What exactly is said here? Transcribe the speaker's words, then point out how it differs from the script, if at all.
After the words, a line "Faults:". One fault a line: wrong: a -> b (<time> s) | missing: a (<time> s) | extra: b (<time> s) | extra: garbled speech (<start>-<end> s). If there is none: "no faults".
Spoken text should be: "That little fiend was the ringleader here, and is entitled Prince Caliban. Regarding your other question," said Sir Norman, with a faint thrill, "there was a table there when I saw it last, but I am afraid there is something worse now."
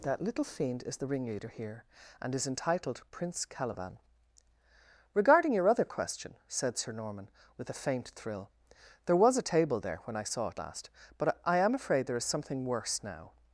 "That little fiend is the ringleader here, and is entitled Prince Caliban. Regarding your other question," said Sir Norman, with a faint thrill, "there was a table there when I saw it last, but I am afraid there is something worse now."
Faults:
wrong: was -> is (0.8 s)